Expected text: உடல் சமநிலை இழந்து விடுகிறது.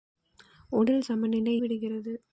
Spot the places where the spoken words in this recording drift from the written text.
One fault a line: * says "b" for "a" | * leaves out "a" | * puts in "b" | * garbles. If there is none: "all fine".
* leaves out "இழந்து"